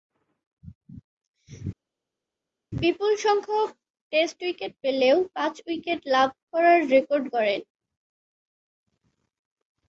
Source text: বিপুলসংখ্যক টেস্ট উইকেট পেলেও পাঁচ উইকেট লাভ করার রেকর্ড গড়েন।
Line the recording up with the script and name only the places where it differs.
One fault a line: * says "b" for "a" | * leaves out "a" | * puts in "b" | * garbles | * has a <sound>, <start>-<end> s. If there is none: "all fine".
all fine